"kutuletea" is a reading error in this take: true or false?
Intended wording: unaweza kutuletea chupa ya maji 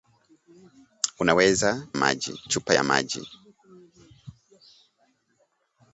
true